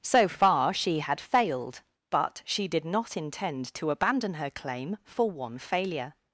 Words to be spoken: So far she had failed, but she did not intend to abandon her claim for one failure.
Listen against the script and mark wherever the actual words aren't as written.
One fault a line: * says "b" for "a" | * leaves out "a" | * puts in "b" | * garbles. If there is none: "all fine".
all fine